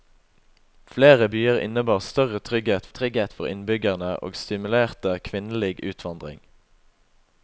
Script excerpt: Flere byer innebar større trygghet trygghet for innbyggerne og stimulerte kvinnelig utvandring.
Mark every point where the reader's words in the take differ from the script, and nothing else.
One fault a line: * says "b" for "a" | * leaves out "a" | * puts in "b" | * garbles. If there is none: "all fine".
all fine